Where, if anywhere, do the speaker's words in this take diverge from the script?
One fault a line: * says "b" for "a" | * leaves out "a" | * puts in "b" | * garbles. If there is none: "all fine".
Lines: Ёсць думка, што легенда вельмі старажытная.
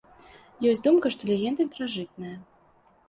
* leaves out "вельмі"